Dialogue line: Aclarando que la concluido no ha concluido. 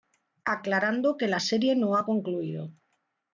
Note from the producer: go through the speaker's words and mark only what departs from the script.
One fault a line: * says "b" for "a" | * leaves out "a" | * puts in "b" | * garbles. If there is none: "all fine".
* says "serie" for "concluido"